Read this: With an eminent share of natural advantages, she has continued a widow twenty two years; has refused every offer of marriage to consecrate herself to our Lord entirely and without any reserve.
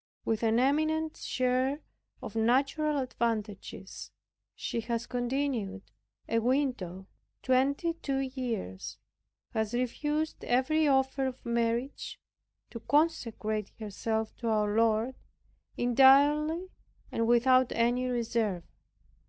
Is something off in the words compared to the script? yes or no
no